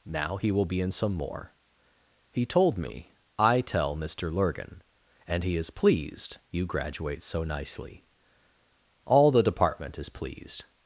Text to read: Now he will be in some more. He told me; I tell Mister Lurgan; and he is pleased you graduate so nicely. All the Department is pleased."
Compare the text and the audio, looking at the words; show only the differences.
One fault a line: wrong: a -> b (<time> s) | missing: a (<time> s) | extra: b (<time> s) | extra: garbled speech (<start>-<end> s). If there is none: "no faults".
no faults